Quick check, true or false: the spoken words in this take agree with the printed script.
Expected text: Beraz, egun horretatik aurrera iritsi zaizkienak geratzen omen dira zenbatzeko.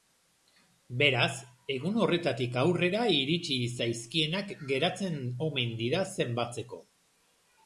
true